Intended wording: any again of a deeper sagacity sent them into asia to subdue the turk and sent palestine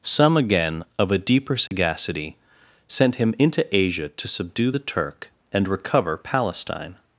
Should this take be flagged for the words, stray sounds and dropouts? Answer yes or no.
yes